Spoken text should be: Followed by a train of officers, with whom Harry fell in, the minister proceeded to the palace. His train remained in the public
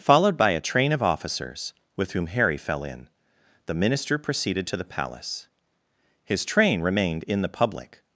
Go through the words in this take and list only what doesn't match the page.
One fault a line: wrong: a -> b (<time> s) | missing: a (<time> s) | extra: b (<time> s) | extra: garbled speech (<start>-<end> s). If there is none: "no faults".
no faults